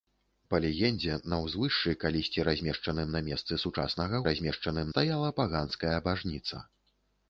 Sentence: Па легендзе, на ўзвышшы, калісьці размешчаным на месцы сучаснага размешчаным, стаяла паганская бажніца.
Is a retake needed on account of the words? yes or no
no